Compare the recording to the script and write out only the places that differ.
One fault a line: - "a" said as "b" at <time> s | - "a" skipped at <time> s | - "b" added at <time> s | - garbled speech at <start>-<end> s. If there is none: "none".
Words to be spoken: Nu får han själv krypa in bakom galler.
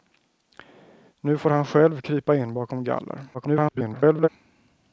- garbled speech at 3.3-4.3 s